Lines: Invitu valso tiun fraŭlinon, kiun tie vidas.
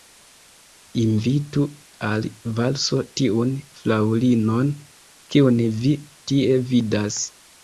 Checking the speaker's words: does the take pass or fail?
fail